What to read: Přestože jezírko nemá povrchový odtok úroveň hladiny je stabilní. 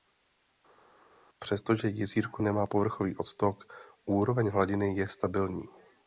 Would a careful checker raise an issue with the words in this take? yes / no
no